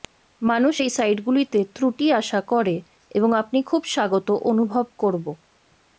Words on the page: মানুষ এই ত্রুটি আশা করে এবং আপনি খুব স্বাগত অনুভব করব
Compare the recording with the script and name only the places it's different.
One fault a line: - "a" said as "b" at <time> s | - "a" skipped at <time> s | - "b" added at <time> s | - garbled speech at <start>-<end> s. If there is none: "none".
- "সাইটগুলিতে" added at 0.9 s